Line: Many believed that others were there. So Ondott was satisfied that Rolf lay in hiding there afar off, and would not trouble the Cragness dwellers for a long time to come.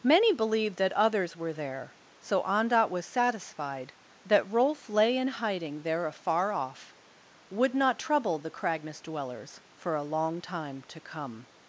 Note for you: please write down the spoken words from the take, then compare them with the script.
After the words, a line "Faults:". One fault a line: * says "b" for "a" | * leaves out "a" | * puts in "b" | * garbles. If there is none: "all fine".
Many believed that others were there. So Ondott was satisfied that Rolf lay in hiding there afar off, would not trouble the Cragness dwellers for a long time to come.
Faults:
* leaves out "and"